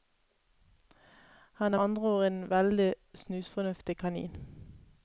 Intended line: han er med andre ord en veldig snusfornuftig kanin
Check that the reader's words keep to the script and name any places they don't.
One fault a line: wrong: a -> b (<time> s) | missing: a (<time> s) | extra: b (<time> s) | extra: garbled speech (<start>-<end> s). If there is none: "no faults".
missing: med (1.8 s)